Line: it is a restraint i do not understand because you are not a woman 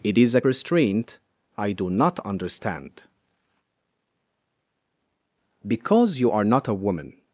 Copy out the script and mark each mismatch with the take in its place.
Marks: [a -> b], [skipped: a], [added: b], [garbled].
it is a restraint i do not understand because you are not a woman